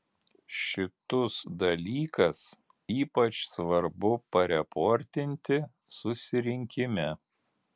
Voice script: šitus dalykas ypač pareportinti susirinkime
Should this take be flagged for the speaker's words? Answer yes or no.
yes